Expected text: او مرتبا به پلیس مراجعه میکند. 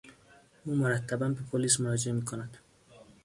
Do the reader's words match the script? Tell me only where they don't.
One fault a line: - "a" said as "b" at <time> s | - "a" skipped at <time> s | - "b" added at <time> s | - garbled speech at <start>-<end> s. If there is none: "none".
none